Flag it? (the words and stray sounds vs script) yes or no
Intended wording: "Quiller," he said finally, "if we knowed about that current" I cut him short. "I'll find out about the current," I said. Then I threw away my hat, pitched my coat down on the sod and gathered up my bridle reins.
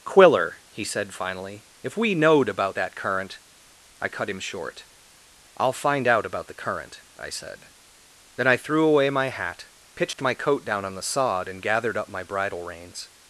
yes